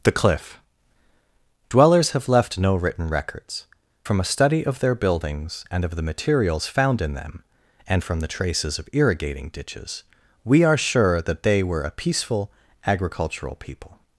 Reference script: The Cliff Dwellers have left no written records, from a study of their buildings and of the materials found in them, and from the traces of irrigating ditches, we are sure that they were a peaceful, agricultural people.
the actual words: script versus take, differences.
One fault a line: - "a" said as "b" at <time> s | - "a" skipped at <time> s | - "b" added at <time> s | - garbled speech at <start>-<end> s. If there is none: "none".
none